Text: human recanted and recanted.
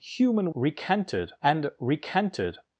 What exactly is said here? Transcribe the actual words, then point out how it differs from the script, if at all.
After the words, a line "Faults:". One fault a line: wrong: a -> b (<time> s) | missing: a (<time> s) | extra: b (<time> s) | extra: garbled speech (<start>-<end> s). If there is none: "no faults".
human recanted and recanted.
Faults:
no faults